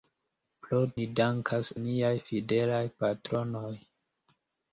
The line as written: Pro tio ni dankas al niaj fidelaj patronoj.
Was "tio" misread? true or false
true